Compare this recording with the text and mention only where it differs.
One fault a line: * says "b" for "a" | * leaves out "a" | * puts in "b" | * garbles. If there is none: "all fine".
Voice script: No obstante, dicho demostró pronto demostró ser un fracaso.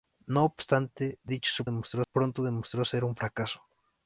all fine